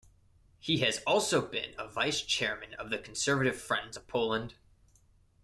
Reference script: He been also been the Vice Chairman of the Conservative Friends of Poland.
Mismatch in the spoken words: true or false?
true